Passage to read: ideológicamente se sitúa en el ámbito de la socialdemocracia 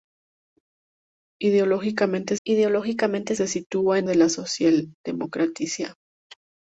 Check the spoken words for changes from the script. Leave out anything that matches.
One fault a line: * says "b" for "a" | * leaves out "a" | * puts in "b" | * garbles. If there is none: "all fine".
* puts in "ideológicamente"
* leaves out "el ámbito"